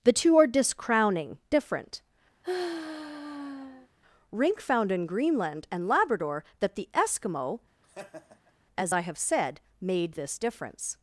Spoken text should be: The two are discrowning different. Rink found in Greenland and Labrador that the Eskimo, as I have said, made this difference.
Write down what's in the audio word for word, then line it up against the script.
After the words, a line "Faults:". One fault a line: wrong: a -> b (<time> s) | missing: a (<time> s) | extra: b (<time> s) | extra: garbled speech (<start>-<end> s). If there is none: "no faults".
The two are discrowning different. Rink found in Greenland and Labrador that the Eskimo, as I have said, made this difference.
Faults:
no faults